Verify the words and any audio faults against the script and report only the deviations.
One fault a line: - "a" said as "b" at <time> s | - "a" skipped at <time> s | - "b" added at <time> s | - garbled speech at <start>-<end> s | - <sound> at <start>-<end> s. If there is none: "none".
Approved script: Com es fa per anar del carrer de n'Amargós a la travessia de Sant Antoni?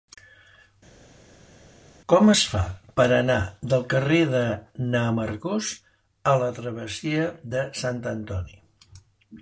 none